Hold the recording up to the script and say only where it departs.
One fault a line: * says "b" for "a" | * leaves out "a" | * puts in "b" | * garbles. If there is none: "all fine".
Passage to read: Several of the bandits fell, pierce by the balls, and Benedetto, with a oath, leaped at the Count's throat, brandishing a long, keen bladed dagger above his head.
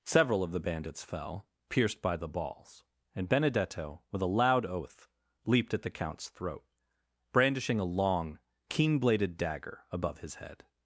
* says "pierced" for "pierce"
* puts in "loud"